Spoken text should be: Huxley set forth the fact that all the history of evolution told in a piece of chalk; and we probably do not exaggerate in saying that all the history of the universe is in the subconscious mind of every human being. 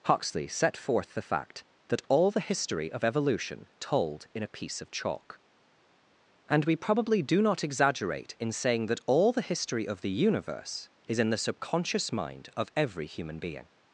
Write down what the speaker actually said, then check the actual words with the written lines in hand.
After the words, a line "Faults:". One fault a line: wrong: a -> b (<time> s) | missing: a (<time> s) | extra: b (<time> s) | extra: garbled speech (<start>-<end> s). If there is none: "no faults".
Huxley set forth the fact that all the history of evolution told in a piece of chalk; and we probably do not exaggerate in saying that all the history of the universe is in the subconscious mind of every human being.
Faults:
no faults